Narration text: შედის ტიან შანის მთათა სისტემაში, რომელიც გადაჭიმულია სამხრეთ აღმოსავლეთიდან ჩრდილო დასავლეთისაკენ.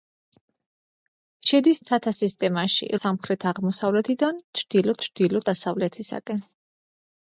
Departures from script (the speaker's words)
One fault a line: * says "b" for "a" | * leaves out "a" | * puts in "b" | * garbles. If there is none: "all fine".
* leaves out "ტიან შანის"
* leaves out "რომელიც გადაჭიმულია"
* puts in "ჩრდილო"